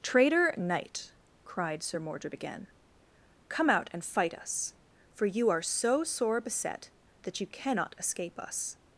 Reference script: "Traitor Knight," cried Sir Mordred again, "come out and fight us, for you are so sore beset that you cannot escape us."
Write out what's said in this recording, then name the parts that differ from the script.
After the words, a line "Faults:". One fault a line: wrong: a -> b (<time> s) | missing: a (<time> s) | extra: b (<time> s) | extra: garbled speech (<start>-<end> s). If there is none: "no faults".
"Traitor Knight," cried Sir Mordred again, "come out and fight us, for you are so sore beset that you cannot escape us."
Faults:
no faults